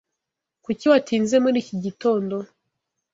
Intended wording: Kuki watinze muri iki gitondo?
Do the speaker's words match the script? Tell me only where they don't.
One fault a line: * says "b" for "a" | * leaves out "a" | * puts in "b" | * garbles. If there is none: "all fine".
all fine